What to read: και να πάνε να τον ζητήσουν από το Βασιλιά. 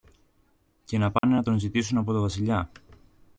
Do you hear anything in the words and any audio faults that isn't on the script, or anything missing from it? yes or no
yes